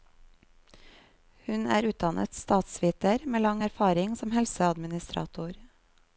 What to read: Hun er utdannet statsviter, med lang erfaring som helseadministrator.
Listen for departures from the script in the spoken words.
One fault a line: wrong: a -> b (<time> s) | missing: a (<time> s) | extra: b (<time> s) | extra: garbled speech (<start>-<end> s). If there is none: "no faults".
no faults